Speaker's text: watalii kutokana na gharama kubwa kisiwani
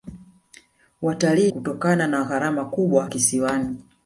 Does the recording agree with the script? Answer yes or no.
yes